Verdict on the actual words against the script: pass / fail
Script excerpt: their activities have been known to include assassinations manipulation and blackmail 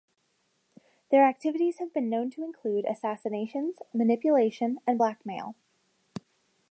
pass